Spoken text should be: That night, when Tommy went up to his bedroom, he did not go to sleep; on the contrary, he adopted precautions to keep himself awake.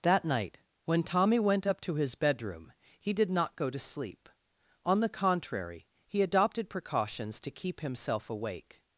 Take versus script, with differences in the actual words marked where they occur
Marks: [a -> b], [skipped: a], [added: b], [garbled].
That night, when Tommy went up to his bedroom, he did not go to sleep; on the contrary, he adopted precautions to keep himself awake.